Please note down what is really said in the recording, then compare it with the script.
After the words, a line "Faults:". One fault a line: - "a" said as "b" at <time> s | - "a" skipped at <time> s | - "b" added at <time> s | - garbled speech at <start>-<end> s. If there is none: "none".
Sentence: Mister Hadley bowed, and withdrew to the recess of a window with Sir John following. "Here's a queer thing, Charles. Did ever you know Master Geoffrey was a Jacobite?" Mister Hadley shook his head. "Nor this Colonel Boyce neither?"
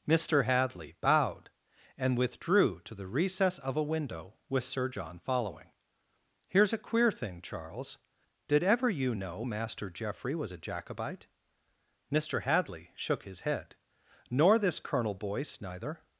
Mister Hadley bowed, and withdrew to the recess of a window with Sir John following. "Here's a queer thing, Charles. Did ever you know Master Geoffrey was a Jacobite?" Mister Hadley shook his head. "Nor this Colonel Boyce neither?"
Faults:
none